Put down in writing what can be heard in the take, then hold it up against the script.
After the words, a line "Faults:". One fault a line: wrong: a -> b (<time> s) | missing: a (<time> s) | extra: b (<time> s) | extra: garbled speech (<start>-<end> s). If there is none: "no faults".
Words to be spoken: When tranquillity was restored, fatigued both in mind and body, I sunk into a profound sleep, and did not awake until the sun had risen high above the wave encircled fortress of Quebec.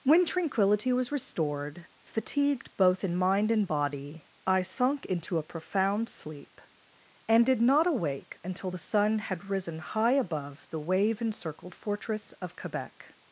When tranquillity was restored, fatigued both in mind and body, I sunk into a profound sleep, and did not awake until the sun had risen high above the wave encircled fortress of Quebec.
Faults:
no faults